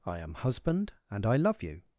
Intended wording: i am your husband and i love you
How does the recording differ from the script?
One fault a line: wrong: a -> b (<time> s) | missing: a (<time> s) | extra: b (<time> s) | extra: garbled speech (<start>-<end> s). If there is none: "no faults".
missing: your (0.3 s)